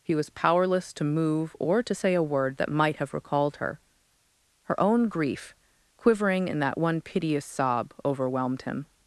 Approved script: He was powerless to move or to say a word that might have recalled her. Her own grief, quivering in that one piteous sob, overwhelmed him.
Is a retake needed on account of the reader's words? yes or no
no